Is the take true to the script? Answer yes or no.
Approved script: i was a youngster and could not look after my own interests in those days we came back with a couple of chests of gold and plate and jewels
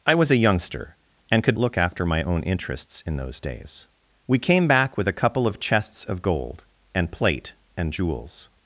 no